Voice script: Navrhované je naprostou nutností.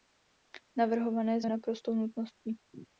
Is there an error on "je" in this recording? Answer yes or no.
no